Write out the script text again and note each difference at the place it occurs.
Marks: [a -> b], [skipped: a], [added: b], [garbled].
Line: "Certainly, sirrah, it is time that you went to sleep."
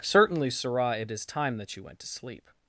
"Certainly, sirrah, it is time that you went to sleep."